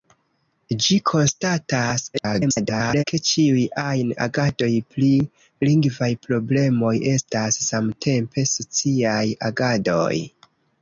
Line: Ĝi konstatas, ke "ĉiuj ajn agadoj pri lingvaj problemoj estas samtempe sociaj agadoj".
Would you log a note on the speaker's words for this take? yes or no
yes